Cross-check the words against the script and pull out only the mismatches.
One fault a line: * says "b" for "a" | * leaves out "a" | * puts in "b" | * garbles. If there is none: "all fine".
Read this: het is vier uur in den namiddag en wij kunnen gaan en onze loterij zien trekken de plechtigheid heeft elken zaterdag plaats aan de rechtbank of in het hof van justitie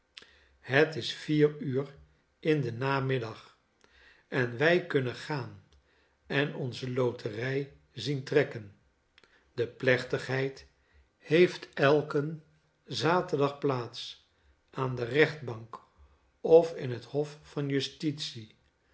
all fine